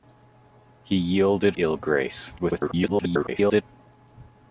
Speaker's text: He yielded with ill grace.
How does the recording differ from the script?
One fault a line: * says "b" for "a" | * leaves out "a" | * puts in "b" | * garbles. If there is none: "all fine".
* leaves out "with"
* garbles